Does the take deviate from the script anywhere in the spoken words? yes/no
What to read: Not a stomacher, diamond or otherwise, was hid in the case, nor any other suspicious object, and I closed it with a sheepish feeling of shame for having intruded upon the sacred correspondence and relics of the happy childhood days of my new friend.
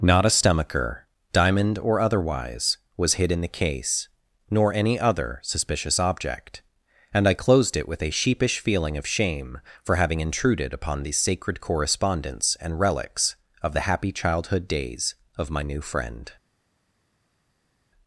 no